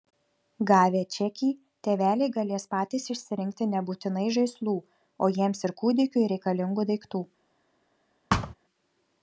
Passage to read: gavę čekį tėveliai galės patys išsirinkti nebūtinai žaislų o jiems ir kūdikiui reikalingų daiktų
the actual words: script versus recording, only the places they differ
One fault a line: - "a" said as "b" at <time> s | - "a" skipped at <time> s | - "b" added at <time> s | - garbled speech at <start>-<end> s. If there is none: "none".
none